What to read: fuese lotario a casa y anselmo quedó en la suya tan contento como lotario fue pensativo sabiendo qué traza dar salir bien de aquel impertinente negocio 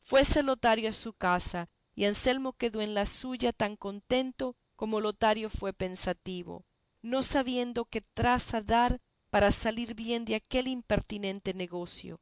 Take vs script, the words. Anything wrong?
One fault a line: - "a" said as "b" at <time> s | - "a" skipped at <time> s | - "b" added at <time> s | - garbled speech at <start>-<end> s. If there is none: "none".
- "su" added at 0.9 s
- "no" added at 7.0 s
- "para" added at 9.3 s